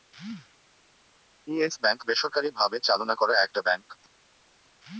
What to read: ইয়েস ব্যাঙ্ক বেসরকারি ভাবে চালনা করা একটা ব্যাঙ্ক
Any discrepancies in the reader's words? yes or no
no